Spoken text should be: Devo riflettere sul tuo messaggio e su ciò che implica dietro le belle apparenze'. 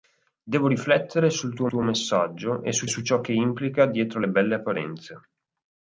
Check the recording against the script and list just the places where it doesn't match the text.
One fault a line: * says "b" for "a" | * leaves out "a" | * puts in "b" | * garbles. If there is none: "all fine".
* puts in "tuo"
* puts in "su"